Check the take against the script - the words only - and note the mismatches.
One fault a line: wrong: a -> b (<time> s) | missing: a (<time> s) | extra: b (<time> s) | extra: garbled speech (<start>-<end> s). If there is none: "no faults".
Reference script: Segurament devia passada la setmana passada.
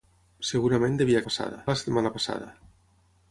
no faults